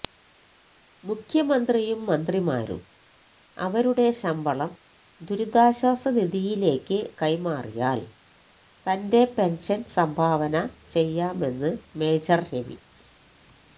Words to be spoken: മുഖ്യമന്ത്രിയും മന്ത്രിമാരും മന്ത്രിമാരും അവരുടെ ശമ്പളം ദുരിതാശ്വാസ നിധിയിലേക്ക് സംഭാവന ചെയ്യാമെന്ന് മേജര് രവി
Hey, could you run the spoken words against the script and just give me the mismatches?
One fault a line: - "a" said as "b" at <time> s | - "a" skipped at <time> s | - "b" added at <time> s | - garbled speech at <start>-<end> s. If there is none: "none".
- "മന്ത്രിമാരും" skipped at 2.8 s
- "കൈമാറിയാല് തന്റെ പെന്ഷന്" added at 7.2 s